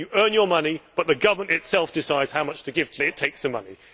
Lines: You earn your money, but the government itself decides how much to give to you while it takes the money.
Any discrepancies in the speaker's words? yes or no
yes